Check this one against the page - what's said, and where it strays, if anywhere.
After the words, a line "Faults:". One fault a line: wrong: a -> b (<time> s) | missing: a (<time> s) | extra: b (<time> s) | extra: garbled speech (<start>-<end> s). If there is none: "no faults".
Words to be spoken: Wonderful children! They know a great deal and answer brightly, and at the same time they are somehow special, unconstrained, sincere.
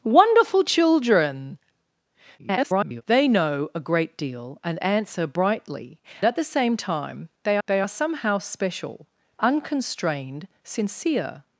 Wonderful children! [garbled] They know a great deal and answer brightly, at the same time they they are somehow special, unconstrained, sincere.
Faults:
extra: garbled speech (2.4-3.0 s)
missing: and (6.0 s)
extra: they (7.7 s)